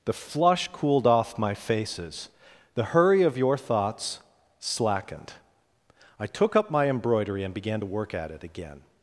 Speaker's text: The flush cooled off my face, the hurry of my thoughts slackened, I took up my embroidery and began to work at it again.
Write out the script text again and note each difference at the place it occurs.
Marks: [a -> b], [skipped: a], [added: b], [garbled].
The flush cooled off my [face, -> faces] the hurry of [my -> your] thoughts slackened, I took up my embroidery and began to work at it again.